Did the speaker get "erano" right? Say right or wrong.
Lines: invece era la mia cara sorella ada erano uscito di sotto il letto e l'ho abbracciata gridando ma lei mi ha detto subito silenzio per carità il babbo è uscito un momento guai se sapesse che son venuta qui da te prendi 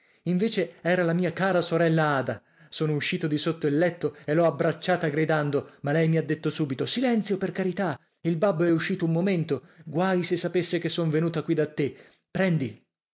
wrong